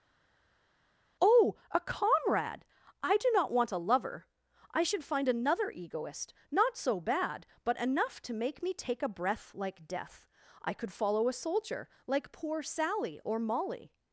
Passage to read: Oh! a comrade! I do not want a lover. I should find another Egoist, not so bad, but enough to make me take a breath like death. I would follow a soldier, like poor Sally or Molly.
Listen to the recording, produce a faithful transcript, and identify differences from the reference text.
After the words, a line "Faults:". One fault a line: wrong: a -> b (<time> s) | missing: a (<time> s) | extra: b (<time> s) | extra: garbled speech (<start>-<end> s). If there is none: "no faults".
Oh! a comrade! I do not want a lover. I should find another Egoist, not so bad, but enough to make me take a breath like death. I could follow a soldier, like poor Sally or Molly.
Faults:
wrong: would -> could (10.7 s)